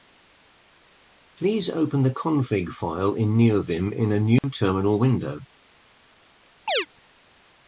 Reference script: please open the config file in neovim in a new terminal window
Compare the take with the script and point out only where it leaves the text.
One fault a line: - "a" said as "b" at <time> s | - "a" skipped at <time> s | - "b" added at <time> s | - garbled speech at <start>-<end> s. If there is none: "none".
none